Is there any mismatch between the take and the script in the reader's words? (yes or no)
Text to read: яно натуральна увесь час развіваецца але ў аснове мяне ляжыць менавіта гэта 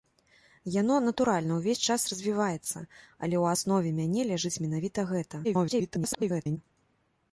yes